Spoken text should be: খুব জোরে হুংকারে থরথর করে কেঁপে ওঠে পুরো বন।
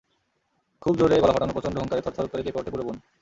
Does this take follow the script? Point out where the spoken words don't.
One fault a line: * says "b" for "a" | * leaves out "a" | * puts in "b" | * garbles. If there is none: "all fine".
* puts in "গলা ফাটানো প্রচণ্ড"